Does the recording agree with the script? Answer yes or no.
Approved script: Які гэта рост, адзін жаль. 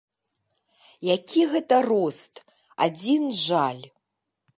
yes